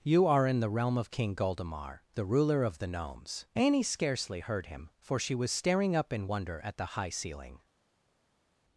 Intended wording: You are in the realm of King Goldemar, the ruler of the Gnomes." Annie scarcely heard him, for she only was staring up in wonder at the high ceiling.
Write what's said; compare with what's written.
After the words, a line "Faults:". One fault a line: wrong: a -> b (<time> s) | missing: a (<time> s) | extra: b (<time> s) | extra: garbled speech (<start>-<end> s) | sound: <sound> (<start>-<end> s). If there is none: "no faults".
You are in the realm of King Goldemar, the ruler of the Gnomes." Annie scarcely heard him, for she was staring up in wonder at the high ceiling.
Faults:
missing: only (5.3 s)